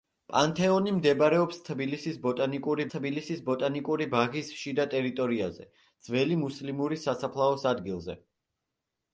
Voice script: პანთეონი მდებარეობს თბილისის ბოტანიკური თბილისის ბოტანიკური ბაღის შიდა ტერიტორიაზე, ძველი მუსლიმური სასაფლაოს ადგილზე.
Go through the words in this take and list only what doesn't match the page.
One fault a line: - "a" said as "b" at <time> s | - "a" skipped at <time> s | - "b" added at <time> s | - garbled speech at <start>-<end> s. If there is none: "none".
none